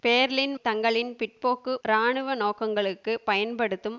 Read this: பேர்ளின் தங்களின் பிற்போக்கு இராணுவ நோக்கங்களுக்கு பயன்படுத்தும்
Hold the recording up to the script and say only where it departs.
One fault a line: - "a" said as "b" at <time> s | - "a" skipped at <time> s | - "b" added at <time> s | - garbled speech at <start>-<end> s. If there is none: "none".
none